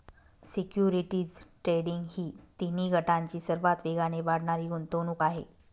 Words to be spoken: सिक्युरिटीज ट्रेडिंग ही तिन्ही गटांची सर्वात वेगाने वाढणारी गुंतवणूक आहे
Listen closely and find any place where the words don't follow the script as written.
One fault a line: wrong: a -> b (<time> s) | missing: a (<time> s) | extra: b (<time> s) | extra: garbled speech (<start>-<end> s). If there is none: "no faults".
no faults